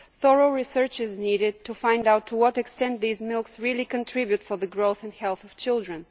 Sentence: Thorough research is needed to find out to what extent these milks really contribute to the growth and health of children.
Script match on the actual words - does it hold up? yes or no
yes